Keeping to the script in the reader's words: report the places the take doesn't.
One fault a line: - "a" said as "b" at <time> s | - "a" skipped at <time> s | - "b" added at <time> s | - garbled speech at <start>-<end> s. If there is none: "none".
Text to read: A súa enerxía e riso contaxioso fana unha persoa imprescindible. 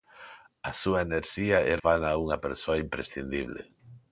- "riso contaxioso" skipped at 1.7 s